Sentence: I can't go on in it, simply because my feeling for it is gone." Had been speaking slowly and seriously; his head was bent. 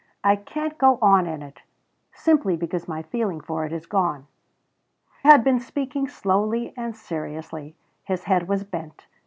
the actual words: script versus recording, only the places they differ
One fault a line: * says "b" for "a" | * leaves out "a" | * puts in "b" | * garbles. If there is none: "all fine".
all fine